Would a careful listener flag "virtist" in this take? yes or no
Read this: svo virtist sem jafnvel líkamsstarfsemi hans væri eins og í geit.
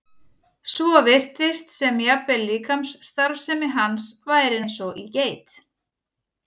no